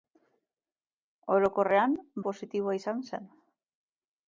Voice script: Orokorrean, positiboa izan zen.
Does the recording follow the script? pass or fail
pass